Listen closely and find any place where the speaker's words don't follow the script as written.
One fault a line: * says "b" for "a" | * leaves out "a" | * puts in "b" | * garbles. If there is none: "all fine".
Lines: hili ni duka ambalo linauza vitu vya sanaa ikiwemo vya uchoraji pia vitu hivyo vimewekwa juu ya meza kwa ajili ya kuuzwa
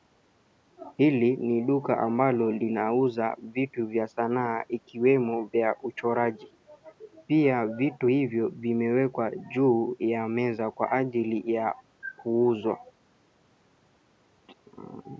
all fine